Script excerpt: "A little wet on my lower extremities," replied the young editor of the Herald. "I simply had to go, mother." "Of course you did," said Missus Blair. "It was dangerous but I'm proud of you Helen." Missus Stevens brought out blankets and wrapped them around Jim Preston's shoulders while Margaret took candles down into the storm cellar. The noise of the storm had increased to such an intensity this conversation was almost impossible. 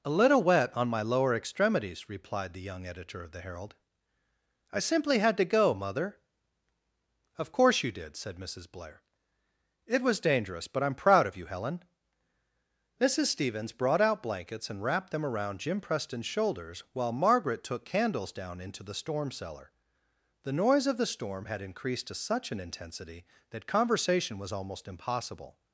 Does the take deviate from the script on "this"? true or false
true